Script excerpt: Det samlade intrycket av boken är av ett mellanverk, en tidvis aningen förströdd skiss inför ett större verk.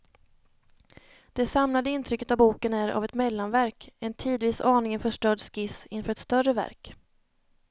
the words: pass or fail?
pass